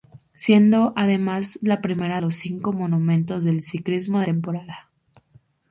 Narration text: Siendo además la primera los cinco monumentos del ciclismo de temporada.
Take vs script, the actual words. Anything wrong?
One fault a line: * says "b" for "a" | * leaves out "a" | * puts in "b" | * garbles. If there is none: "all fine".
all fine